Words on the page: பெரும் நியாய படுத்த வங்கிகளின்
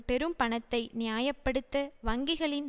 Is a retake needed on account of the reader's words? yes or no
yes